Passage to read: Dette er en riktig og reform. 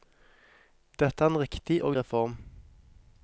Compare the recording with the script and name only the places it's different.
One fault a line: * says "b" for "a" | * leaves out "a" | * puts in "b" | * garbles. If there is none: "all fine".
all fine